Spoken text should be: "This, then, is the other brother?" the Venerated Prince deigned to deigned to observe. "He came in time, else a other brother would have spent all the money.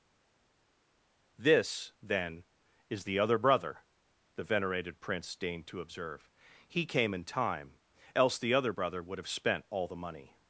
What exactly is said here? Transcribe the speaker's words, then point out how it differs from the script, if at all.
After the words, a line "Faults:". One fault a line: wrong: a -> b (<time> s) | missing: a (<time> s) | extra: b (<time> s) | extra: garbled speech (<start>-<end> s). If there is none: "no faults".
"This, then, is the other brother?" the Venerated Prince deigned to observe. "He came in time, else the other brother would have spent all the money.
Faults:
missing: deigned to (5.8 s)
wrong: a -> the (8.4 s)